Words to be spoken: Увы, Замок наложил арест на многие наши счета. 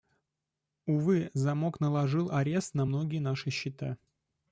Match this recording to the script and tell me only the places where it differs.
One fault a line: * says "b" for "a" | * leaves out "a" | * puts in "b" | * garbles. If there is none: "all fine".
all fine